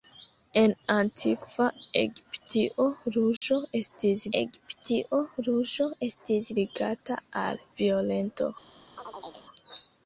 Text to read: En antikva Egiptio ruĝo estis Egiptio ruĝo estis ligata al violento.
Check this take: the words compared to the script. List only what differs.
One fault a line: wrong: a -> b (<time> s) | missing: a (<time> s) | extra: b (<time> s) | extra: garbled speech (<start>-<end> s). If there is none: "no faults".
no faults